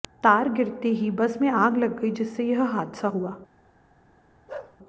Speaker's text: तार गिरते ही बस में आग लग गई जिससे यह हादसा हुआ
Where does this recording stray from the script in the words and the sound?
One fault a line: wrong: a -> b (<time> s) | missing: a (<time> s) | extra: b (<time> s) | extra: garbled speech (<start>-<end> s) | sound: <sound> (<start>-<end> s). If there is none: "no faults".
sound: bark (4.5-4.8 s)